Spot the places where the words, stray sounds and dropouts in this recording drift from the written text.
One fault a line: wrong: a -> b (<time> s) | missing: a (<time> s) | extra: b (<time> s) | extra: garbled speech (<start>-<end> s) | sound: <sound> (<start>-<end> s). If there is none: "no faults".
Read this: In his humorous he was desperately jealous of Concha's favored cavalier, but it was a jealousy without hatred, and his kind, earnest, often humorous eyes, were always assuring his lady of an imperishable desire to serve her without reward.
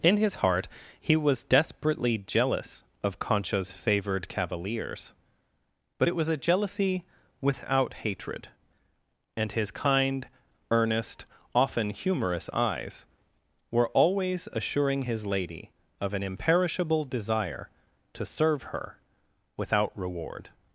wrong: humorous -> heart (0.3 s)
wrong: cavalier -> cavaliers (4.3 s)